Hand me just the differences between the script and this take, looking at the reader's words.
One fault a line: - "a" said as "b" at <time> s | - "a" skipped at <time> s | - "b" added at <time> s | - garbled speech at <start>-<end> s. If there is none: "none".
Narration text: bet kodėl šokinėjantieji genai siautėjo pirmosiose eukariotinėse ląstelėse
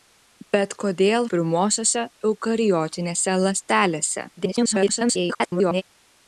- "šokinėjantieji genai siautėjo" skipped at 1.3 s
- garbled speech at 4.4-5.8 s